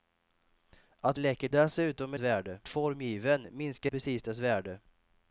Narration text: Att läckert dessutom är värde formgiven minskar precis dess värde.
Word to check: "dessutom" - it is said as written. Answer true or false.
true